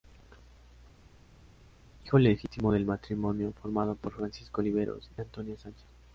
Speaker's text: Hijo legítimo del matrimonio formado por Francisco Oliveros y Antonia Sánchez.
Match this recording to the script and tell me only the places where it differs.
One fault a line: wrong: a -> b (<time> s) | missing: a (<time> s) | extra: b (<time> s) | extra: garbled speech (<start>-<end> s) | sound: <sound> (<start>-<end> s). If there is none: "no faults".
no faults